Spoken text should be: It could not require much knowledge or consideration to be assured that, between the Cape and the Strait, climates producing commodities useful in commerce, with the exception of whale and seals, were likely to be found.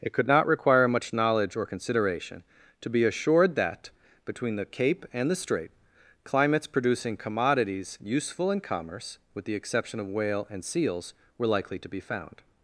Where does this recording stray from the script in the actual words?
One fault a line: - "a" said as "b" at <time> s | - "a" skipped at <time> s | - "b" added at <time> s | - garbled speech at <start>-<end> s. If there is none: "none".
none